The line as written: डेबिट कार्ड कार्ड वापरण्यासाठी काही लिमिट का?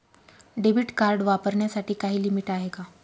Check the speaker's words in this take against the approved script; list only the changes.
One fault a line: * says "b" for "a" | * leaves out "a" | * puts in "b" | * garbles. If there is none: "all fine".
* leaves out "कार्ड"
* puts in "आहे"